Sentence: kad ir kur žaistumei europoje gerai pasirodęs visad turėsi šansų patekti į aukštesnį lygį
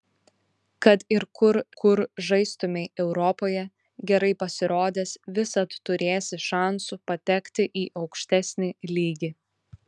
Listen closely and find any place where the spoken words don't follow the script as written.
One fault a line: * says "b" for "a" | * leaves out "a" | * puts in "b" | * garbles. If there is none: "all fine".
* puts in "kur"